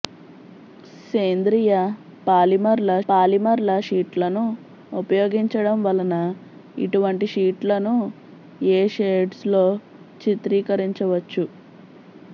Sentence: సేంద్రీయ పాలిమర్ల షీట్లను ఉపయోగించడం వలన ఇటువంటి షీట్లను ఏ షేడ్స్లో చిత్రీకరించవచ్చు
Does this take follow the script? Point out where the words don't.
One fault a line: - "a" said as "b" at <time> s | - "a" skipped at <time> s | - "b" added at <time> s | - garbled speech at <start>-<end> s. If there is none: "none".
- "పాలిమర్ల" added at 3.1 s